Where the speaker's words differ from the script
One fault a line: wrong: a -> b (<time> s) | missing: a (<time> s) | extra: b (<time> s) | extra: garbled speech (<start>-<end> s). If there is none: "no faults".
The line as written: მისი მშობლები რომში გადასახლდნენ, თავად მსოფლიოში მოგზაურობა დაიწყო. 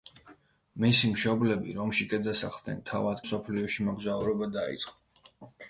no faults